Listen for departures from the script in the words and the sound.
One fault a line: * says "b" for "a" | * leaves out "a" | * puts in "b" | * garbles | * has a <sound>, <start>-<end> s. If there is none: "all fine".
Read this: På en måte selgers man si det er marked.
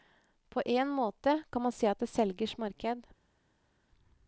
* says "kan" for "selgers"
* puts in "at"
* puts in "selgers"